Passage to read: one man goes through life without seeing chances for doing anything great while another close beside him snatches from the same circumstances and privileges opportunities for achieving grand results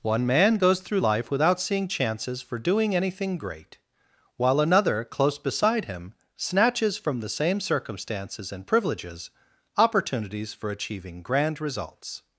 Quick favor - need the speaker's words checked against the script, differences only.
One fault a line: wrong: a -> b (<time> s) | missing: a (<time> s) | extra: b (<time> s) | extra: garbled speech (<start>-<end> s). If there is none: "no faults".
no faults